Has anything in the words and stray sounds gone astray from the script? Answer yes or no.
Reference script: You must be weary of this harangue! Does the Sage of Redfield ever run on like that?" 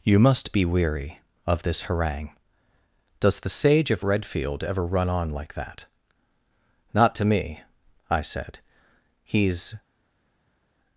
yes